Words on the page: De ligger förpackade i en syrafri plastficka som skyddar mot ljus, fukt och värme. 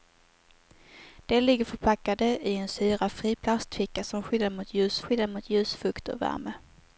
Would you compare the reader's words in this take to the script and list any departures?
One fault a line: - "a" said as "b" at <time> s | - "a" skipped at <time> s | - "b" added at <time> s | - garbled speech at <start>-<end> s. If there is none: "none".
- "skyddar mot ljus" added at 5.0 s